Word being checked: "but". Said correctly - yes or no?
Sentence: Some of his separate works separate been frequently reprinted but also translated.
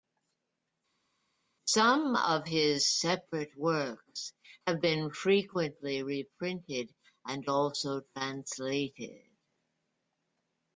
no